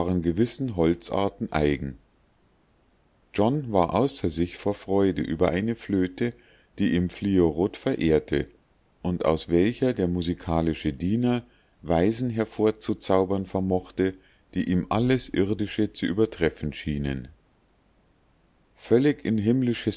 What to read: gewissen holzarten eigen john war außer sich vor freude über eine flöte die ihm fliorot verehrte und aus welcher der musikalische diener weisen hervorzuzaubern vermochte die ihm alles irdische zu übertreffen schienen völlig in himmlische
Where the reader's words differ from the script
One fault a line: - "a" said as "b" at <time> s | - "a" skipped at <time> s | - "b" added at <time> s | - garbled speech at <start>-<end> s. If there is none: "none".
none